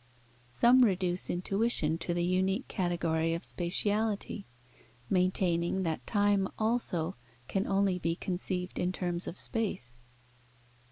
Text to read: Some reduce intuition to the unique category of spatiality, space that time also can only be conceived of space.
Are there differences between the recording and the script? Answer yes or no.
yes